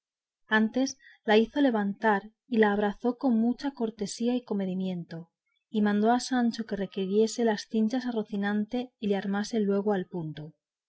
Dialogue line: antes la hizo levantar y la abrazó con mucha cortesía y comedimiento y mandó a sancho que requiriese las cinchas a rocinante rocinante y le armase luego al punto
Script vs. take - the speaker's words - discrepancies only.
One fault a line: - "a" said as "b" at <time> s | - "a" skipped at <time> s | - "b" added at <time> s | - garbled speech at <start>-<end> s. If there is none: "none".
- "rocinante" skipped at 8.9 s